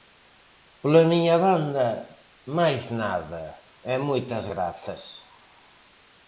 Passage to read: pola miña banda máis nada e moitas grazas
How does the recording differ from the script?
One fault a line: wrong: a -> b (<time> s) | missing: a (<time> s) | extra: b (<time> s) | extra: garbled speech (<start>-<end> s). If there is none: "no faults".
no faults